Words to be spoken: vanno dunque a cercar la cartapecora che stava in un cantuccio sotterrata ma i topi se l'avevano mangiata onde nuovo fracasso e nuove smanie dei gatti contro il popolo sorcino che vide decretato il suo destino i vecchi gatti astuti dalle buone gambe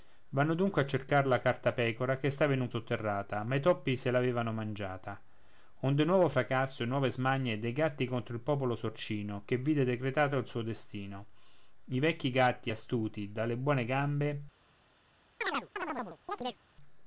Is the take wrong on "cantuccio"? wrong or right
wrong